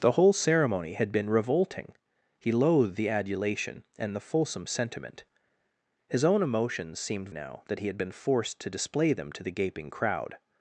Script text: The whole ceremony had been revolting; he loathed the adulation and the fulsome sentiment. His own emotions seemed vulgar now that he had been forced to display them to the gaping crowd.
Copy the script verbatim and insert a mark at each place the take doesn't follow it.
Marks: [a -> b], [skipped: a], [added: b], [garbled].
The whole ceremony had been revolting; he loathed the adulation and the fulsome sentiment. His own emotions seemed [skipped: vulgar] now that he had been forced to display them to the gaping crowd.